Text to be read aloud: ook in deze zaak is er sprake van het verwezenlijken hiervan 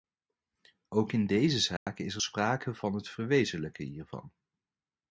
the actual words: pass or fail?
pass